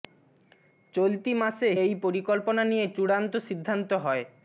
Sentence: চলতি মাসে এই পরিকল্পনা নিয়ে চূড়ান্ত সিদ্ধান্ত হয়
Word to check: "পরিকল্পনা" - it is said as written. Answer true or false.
true